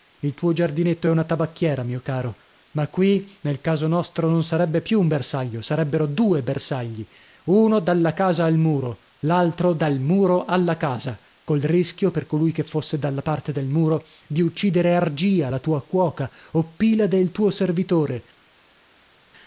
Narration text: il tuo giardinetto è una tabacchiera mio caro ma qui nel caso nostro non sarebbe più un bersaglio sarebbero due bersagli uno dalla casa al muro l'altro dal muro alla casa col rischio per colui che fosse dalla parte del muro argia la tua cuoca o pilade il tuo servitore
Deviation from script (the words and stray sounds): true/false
true